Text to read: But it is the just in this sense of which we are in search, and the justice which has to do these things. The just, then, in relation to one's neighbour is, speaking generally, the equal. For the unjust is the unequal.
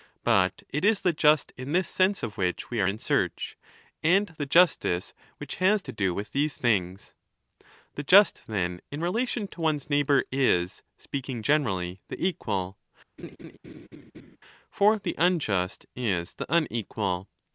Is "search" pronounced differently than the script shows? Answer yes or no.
no